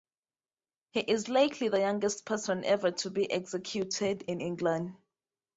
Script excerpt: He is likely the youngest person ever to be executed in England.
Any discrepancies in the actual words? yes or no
no